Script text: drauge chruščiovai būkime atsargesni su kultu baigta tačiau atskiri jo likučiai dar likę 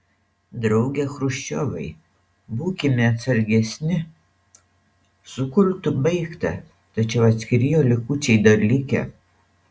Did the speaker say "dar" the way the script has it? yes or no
yes